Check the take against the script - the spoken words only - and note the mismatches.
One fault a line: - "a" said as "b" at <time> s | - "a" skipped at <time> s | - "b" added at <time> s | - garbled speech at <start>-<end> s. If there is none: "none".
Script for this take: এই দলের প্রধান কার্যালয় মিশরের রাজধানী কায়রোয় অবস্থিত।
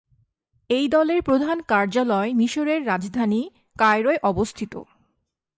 none